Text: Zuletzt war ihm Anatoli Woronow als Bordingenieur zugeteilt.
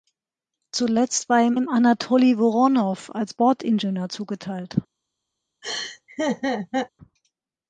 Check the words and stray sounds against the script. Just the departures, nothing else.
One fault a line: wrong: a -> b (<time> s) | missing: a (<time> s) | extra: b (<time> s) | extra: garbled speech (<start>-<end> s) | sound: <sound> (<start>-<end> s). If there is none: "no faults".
extra: ihm (1.5 s)
sound: laugh (5.6-6.9 s)